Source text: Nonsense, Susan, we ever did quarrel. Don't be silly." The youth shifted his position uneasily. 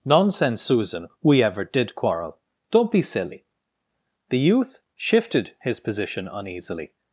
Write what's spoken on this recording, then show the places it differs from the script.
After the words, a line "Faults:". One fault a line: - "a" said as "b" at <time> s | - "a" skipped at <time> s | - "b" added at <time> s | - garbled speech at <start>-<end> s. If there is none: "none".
Nonsense, Susan, we ever did quarrel. Don't be silly." The youth shifted his position uneasily.
Faults:
none